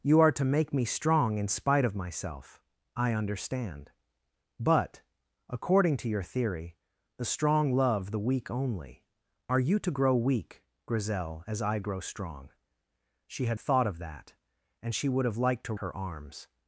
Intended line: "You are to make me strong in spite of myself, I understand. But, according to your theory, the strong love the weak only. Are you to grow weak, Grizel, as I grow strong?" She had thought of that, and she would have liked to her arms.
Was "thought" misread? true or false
false